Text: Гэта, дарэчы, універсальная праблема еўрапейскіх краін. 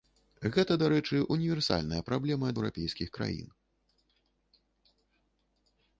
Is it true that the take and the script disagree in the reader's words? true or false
false